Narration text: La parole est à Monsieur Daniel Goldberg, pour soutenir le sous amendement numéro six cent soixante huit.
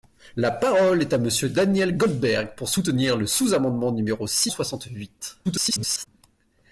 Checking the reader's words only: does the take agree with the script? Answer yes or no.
no